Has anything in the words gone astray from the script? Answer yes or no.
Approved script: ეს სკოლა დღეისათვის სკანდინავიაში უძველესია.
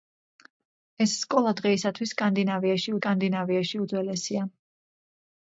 yes